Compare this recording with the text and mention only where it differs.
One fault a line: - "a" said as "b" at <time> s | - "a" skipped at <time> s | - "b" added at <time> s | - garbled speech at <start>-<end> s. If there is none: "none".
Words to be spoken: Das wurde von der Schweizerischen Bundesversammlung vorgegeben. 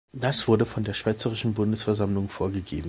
none